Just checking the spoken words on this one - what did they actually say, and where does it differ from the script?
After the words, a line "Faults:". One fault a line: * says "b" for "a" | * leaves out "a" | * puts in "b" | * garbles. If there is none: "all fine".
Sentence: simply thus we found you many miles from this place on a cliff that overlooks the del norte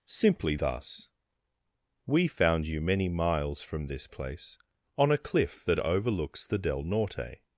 simply thus we found you many miles from this place on a cliff that overlooks the del norte
Faults:
all fine